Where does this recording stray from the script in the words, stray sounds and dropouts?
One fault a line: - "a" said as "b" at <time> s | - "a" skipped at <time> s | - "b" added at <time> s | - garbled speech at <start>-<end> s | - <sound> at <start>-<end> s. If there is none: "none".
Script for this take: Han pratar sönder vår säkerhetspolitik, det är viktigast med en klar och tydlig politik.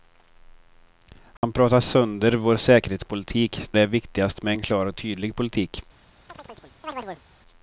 - dropout at 1.4-1.4 s
- chirp at 6.3-7.2 s